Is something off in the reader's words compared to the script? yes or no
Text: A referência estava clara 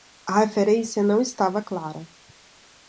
yes